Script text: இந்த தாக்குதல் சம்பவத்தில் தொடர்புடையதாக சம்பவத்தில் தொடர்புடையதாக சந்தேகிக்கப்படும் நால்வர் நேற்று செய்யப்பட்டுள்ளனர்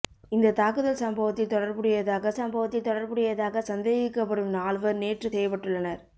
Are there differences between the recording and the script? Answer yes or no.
no